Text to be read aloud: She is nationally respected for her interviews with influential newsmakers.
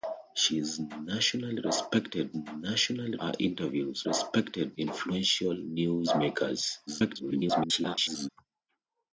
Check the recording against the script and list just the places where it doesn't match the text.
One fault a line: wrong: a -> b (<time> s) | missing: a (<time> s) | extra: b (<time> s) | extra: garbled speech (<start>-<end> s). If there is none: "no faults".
wrong: for -> nationally (2.3 s)
wrong: with -> respected (4.0 s)
extra: garbled speech (6.9-8.3 s)